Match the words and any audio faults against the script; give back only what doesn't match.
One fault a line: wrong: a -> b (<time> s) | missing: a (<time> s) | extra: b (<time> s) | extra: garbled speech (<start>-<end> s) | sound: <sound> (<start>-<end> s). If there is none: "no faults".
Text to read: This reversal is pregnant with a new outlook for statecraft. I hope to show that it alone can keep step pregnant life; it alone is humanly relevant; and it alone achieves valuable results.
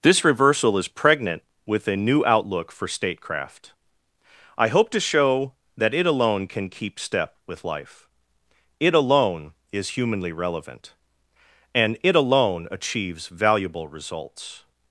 wrong: pregnant -> with (7.5 s)